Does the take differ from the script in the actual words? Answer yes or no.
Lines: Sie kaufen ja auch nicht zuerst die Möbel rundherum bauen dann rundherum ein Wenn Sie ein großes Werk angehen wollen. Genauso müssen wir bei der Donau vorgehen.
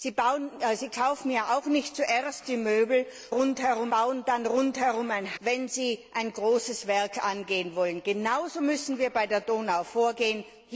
no